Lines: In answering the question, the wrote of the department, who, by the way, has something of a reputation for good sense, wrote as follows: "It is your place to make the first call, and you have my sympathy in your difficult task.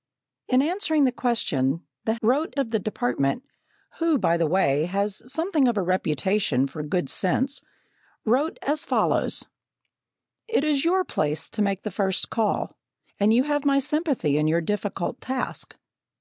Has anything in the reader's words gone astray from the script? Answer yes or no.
no